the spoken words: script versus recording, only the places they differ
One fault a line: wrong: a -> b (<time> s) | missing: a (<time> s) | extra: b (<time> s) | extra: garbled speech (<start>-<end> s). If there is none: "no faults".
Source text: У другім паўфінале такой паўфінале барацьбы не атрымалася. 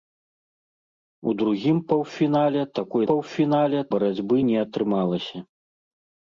no faults